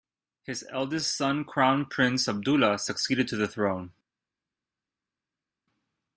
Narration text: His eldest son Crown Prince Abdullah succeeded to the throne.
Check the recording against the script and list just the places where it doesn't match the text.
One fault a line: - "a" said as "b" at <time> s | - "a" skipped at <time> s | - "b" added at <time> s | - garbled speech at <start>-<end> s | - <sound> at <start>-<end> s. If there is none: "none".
none